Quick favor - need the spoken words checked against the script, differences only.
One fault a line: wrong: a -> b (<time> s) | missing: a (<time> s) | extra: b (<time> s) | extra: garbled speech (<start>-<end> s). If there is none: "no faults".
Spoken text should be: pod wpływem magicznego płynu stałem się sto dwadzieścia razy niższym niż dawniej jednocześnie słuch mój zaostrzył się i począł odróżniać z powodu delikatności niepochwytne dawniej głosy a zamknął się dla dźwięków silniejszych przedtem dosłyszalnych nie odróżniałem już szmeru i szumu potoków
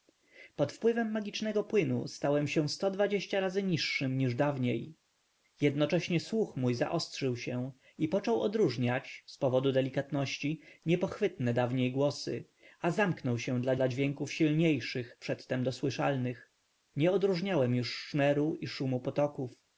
extra: dla (13.7 s)